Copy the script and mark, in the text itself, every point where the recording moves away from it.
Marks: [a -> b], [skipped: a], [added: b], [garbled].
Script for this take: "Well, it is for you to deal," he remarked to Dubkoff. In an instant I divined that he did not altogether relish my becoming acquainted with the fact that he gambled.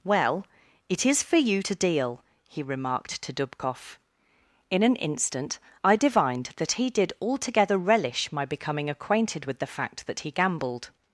"Well, it is for you to deal," he remarked to Dubkoff. In an instant I divined that he did [skipped: not] altogether relish my becoming acquainted with the fact that he gambled.